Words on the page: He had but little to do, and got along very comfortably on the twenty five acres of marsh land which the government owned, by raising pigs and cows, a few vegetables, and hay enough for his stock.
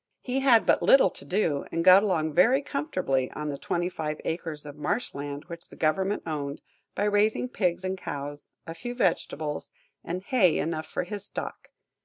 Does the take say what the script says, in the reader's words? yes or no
yes